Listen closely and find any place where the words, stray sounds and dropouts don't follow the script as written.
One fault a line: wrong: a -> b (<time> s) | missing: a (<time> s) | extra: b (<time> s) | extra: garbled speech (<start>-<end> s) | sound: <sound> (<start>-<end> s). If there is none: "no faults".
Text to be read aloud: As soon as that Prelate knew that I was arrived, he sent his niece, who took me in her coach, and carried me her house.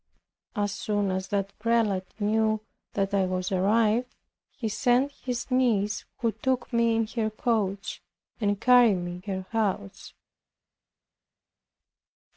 no faults